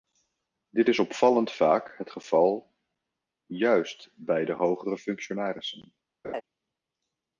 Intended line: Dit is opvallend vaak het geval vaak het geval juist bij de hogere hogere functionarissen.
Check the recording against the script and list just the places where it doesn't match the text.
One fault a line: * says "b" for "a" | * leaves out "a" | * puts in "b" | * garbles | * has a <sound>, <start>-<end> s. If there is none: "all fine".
* leaves out "vaak het geval"
* leaves out "hogere"
* has a laugh, 6.2-6.4 s